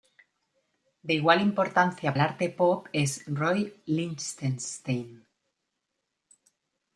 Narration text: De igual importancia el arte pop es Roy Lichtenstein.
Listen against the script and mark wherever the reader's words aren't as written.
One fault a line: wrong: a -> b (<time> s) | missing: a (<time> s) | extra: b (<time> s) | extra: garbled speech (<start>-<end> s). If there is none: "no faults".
no faults